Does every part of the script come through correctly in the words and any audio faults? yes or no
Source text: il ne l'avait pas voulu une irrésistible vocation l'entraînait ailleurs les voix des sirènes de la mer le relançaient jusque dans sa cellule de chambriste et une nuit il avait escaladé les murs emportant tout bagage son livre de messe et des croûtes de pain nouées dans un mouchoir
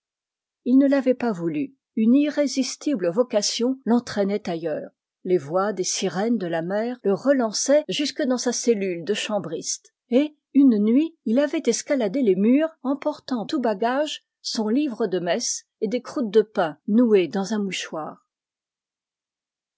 yes